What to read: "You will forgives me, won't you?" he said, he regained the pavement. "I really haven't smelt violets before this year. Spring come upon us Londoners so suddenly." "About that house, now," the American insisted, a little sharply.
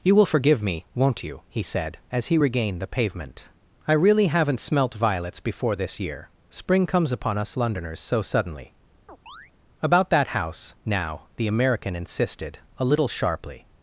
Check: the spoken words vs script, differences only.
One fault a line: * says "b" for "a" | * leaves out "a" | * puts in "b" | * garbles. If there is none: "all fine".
* says "forgive" for "forgives"
* puts in "as"
* says "comes" for "come"